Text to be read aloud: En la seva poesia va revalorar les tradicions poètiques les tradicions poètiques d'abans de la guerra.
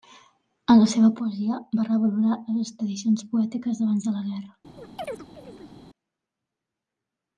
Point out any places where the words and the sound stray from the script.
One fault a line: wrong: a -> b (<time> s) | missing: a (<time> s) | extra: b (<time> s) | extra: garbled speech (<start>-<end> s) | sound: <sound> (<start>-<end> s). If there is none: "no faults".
missing: les tradicions poètiques (3.8 s)
sound: chirp (4.8-5.8 s)